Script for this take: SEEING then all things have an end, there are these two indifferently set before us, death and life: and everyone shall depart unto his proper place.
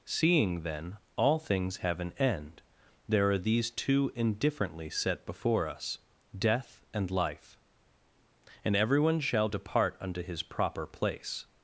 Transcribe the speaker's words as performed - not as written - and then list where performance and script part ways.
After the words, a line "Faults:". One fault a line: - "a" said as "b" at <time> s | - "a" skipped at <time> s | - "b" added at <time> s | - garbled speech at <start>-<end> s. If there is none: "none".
SEEING then all things have an end, there are these two indifferently set before us, death and life: and everyone shall depart unto his proper place.
Faults:
none